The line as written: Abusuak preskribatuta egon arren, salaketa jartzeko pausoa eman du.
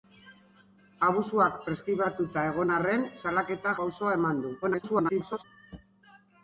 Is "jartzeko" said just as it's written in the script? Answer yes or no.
no